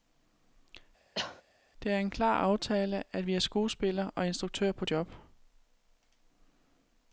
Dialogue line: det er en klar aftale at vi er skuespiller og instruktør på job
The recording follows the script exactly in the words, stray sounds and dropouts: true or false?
false